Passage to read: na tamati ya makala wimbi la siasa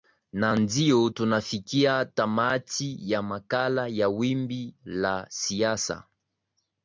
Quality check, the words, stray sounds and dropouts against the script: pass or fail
fail